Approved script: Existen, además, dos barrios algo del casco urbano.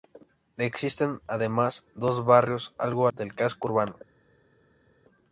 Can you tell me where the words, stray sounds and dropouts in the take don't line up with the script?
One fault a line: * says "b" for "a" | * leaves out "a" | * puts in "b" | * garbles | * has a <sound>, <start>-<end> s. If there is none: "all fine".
all fine